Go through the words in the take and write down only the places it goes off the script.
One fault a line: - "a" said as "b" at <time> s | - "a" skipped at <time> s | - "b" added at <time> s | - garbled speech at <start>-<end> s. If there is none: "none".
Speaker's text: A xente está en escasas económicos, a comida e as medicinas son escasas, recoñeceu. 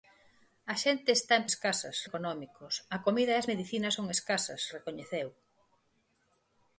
none